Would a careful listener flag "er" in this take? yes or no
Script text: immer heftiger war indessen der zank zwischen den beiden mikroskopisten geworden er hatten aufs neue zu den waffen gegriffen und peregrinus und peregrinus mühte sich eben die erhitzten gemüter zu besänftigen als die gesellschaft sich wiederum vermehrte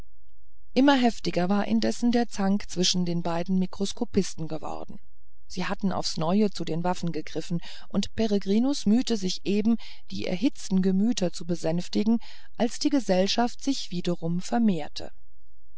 yes